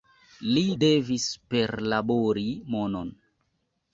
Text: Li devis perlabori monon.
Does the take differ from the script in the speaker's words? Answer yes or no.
no